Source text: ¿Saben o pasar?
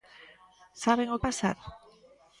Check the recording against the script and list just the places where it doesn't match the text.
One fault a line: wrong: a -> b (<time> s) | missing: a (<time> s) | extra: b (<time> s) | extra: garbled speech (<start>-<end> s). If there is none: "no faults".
no faults